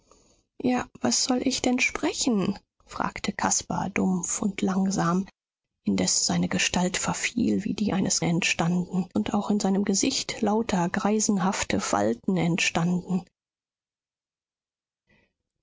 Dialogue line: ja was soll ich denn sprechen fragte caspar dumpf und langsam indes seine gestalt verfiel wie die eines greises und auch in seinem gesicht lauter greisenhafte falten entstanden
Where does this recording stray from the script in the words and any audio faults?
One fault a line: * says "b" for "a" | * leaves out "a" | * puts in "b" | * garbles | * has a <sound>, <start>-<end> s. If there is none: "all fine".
* says "entstanden" for "greises"